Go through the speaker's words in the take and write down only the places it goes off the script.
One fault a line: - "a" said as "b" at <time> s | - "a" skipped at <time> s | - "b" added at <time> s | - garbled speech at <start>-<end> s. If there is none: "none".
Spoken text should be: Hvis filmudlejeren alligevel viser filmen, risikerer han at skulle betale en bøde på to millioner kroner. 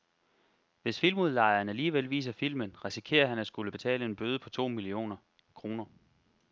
none